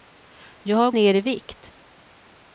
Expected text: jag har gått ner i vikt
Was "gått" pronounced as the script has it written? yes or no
no